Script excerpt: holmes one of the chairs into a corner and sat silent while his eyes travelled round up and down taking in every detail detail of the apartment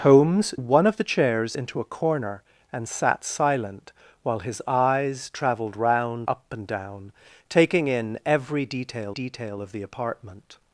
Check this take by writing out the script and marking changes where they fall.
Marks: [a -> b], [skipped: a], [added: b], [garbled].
holmes one of the chairs into a corner and sat silent while his eyes travelled round up and down taking in every detail detail of the apartment